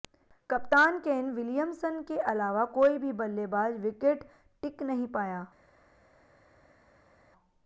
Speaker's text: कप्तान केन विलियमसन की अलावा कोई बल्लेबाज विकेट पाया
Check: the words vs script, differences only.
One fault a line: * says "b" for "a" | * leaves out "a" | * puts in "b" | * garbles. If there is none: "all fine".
* says "के" for "की"
* puts in "भी"
* puts in "टिक नहीं"